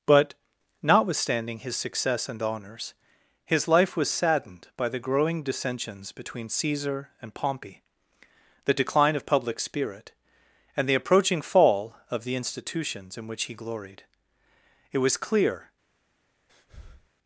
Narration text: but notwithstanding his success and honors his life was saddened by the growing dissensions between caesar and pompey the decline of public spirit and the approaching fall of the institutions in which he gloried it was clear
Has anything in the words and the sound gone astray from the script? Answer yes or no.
yes